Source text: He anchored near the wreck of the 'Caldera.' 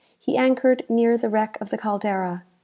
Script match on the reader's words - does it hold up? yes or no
yes